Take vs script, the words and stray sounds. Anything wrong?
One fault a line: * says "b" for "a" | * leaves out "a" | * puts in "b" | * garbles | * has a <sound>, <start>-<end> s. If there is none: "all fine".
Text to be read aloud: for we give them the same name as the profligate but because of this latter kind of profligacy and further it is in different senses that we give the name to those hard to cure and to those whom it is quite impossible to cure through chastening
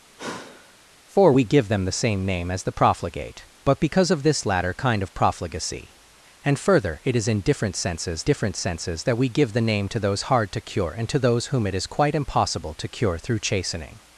* has a sigh, 0.2-0.8 s
* puts in "different senses"